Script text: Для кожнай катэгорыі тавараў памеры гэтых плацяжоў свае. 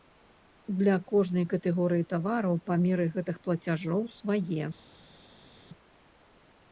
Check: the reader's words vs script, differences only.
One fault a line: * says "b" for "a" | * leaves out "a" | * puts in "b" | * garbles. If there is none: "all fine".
all fine